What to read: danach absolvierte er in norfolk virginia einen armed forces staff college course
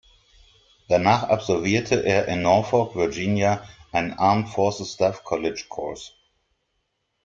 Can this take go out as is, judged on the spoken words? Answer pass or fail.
pass